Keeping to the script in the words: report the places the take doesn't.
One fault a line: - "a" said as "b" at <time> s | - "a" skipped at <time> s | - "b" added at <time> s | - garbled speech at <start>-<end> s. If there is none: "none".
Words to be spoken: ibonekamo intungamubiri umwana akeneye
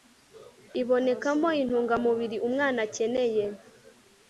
none